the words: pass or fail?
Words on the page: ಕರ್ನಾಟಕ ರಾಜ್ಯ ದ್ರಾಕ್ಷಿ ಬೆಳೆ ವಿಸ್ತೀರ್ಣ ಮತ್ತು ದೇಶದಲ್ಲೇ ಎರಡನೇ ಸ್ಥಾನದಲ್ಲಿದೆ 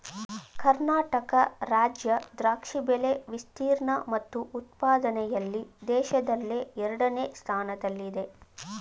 fail